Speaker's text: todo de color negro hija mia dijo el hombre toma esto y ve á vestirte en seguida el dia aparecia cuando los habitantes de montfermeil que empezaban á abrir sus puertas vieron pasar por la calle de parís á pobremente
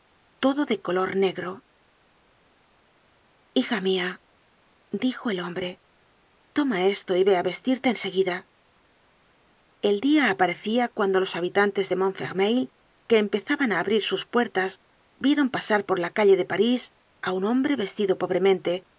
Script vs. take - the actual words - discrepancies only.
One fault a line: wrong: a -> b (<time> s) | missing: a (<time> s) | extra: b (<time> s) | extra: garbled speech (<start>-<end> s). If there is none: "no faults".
extra: un hombre vestido (17.3 s)